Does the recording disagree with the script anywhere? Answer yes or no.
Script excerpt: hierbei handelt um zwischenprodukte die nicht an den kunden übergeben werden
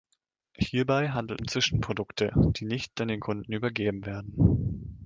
no